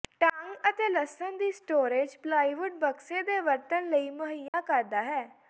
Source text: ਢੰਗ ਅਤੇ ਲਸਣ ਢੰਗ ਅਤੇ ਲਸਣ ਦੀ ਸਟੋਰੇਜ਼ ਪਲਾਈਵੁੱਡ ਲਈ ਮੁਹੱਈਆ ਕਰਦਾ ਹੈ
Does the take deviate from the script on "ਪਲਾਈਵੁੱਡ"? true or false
true